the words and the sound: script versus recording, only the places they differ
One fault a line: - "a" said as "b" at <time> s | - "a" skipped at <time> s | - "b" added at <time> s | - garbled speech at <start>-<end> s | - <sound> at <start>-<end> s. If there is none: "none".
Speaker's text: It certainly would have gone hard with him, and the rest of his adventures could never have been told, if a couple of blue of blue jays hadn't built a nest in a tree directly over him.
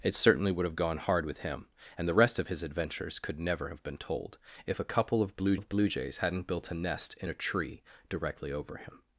none